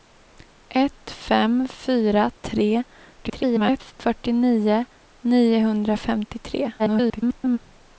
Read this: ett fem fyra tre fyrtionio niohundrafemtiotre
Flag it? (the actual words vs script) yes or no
yes